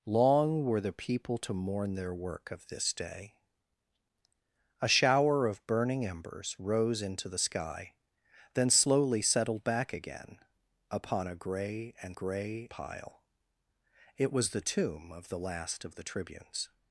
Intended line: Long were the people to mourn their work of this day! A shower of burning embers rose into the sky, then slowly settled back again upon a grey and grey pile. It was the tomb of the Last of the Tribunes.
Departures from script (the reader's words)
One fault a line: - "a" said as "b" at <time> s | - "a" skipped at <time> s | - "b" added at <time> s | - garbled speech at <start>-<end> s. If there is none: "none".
none